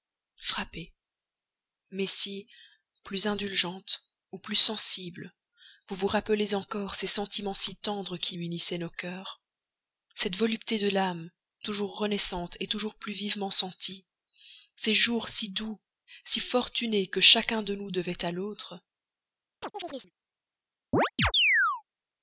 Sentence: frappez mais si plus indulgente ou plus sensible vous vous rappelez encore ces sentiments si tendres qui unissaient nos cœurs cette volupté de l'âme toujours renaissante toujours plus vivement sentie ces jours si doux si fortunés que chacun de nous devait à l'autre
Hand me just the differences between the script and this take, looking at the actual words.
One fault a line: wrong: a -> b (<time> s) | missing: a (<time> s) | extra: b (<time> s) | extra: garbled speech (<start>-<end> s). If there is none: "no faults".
no faults